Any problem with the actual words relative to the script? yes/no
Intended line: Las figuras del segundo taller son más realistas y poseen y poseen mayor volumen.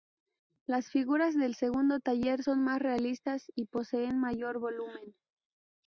yes